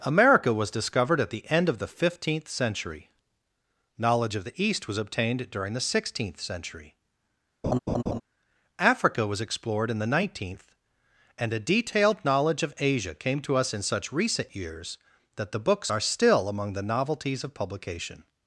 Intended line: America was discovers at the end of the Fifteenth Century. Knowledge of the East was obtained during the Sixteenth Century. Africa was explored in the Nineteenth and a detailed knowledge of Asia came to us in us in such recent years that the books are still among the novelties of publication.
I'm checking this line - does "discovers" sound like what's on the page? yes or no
no